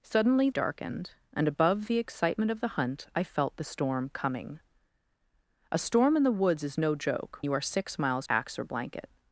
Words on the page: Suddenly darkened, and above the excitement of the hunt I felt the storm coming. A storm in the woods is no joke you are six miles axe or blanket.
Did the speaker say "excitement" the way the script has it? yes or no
yes